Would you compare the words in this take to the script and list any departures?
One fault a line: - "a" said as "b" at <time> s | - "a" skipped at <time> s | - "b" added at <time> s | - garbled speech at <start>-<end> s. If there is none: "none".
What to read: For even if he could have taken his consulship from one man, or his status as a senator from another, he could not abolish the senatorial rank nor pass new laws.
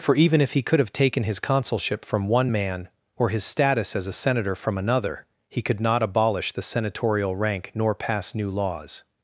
none